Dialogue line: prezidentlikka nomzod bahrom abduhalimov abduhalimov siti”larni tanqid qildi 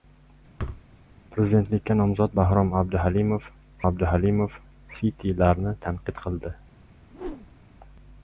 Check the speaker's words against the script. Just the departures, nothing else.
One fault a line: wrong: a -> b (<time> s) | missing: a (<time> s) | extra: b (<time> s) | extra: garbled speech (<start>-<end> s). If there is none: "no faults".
no faults